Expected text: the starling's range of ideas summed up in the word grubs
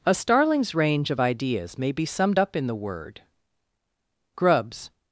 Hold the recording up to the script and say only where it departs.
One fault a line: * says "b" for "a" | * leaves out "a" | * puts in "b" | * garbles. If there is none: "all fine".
* says "a" for "the"
* puts in "may be"